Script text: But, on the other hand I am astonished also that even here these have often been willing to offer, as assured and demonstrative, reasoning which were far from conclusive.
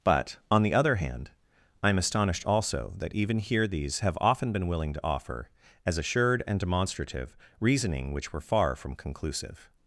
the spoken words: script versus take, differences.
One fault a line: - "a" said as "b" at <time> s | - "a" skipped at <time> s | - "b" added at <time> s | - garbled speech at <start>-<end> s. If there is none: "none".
none